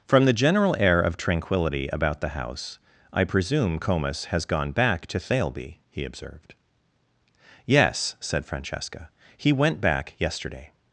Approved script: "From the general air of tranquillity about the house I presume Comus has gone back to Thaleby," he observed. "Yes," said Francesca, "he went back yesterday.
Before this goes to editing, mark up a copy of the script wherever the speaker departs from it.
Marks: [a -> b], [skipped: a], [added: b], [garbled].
"From the general air of tranquillity about the house I presume Comus has gone back to Thaleby," he observed. "Yes," said Francesca, "he went back yesterday.